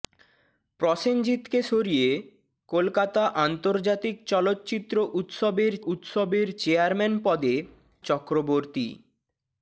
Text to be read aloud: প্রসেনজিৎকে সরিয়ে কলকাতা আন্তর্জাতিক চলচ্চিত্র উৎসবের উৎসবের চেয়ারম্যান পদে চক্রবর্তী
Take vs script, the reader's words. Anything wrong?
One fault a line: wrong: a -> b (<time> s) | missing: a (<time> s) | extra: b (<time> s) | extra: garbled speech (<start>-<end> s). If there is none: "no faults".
no faults